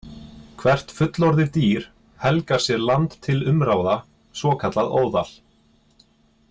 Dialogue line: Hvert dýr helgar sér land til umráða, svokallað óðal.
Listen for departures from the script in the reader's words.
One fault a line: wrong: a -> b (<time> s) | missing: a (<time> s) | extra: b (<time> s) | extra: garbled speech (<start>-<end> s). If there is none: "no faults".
extra: fullorðið (1.0 s)